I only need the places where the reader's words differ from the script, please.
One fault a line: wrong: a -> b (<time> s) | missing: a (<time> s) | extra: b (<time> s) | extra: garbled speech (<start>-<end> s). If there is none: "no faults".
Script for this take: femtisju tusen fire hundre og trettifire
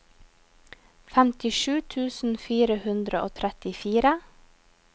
no faults